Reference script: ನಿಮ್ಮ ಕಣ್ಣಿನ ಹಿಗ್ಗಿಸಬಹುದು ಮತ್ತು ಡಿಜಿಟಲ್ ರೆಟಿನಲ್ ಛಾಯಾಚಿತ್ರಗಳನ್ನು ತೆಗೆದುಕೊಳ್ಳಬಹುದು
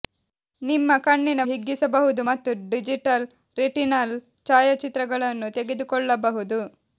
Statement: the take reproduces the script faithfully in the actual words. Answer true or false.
true